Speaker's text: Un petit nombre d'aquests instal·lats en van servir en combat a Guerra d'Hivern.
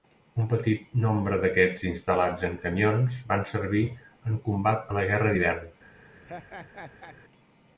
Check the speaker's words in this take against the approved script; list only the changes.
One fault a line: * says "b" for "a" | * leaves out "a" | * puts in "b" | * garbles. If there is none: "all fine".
* puts in "camions"
* puts in "la"